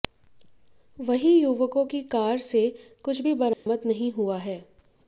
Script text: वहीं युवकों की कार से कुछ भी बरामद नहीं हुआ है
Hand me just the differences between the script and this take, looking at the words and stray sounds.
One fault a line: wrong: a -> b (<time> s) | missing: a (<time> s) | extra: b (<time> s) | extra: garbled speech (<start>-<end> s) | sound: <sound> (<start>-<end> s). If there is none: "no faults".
sound: dropout (3.5-3.7 s)